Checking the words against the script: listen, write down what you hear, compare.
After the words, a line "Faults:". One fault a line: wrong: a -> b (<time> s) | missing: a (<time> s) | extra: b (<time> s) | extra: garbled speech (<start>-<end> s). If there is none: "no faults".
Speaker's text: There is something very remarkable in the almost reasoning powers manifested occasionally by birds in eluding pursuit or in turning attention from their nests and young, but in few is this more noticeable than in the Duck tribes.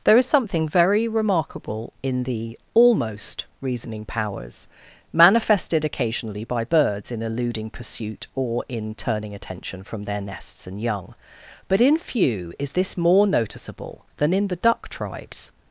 There is something very remarkable in the almost reasoning powers manifested occasionally by birds in eluding pursuit or in turning attention from their nests and young, but in few is this more noticeable than in the Duck tribes.
Faults:
no faults